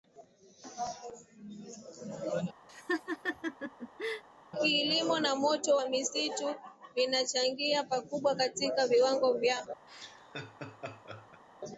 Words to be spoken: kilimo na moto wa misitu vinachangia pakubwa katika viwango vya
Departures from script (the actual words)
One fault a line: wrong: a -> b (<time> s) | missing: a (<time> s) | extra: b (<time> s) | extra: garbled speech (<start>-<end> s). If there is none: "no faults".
no faults